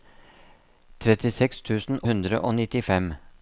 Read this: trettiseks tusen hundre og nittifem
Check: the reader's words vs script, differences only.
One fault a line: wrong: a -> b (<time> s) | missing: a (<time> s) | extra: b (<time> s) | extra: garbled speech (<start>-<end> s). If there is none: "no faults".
no faults